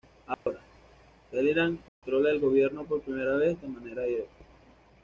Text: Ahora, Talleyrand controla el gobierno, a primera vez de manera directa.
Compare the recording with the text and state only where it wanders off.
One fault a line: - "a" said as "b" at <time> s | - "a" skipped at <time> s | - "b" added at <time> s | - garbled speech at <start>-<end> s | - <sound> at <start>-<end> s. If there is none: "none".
- dropout at 0.3-0.5 s
- dropout at 1.9-2.0 s
- "a" said as "por" at 2.8 s